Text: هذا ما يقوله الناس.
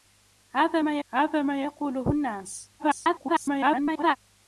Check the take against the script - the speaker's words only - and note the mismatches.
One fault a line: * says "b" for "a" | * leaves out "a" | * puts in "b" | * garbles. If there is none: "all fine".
* puts in "هذا ما"
* garbles